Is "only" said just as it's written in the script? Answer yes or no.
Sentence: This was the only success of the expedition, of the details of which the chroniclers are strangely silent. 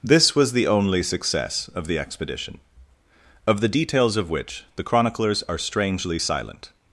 yes